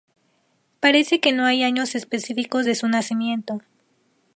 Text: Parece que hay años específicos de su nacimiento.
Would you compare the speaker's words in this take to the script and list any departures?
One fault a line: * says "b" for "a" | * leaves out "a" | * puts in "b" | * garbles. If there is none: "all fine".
* puts in "no"